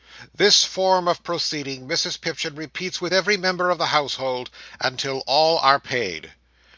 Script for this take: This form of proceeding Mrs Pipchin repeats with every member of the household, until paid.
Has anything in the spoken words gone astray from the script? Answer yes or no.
yes